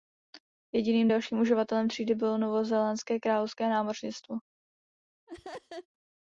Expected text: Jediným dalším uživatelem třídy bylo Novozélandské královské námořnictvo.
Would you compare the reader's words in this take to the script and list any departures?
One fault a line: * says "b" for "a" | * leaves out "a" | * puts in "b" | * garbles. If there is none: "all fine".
all fine